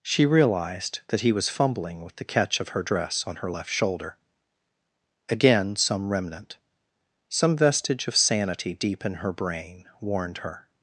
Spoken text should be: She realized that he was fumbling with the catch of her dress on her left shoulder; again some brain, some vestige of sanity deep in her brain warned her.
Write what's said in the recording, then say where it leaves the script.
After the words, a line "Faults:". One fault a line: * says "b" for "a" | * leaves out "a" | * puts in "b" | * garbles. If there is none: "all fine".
She realized that he was fumbling with the catch of her dress on her left shoulder; again some remnant, some vestige of sanity deep in her brain warned her.
Faults:
* says "remnant" for "brain"